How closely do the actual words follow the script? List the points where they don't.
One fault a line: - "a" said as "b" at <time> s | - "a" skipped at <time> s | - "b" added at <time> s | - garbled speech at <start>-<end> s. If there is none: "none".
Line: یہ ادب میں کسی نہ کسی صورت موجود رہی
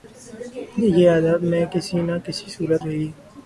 - "موجود" skipped at 2.8 s